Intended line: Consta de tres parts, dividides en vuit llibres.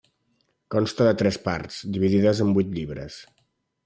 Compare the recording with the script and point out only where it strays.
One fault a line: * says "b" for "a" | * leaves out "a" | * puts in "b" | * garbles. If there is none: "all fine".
all fine